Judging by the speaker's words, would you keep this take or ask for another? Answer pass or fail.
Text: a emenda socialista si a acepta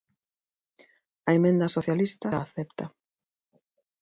fail